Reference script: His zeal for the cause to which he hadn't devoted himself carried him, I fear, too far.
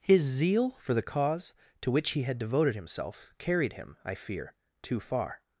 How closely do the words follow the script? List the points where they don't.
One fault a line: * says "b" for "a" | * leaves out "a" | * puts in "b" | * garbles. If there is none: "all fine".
* says "had" for "hadn't"